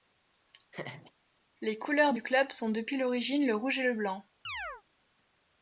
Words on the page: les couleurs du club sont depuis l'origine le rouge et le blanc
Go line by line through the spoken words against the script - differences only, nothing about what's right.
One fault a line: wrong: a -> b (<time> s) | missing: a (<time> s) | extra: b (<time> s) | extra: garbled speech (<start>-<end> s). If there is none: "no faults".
no faults